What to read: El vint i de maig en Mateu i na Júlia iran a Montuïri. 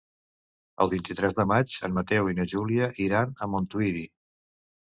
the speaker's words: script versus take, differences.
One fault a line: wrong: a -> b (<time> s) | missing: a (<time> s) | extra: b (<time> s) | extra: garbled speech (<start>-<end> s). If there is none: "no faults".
extra: tres (1.2 s)